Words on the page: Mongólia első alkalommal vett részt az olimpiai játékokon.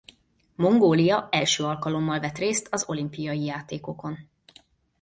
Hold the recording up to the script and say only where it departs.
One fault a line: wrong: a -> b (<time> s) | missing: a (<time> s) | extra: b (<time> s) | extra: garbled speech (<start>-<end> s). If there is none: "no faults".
no faults